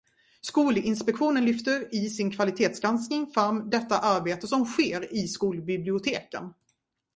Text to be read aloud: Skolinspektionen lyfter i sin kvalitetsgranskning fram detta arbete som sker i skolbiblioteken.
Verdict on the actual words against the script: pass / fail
pass